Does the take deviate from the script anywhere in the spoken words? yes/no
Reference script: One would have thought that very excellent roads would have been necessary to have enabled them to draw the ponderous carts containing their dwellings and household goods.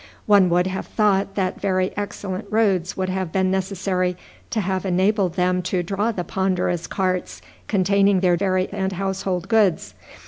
yes